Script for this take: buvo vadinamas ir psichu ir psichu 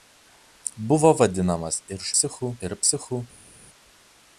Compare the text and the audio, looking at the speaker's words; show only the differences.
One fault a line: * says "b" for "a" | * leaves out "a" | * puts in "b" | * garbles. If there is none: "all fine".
all fine